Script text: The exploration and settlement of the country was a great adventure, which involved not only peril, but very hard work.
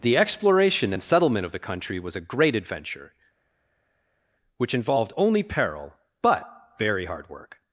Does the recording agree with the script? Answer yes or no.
no